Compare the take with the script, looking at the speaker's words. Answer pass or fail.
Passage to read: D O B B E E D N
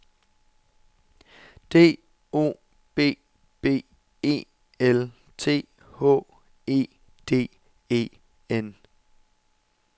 fail